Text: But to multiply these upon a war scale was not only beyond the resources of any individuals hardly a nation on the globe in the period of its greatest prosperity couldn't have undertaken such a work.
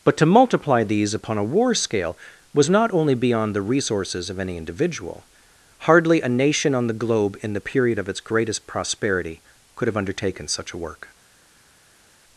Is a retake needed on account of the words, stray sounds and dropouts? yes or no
yes